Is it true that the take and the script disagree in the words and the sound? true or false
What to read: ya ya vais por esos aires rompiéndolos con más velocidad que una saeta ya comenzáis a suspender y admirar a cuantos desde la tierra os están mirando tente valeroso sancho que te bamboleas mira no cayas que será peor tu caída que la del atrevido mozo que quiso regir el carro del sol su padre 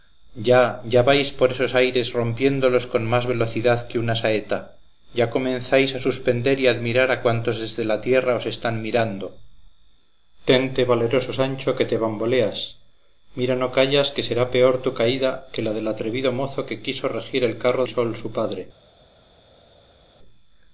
true